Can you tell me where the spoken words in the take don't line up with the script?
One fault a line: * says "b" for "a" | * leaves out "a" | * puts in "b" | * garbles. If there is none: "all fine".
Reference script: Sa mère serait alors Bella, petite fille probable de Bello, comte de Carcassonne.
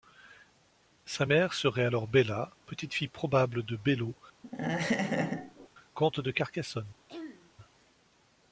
all fine